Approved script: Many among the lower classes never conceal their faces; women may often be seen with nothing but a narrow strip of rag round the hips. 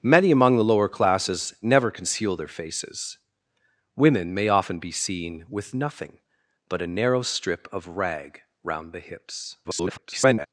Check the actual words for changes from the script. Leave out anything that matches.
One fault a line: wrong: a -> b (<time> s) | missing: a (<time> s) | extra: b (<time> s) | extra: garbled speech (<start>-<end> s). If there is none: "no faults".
extra: garbled speech (9.6-10.5 s)